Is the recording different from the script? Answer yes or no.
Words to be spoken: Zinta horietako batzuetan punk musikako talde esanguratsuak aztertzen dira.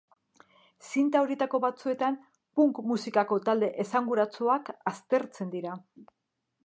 no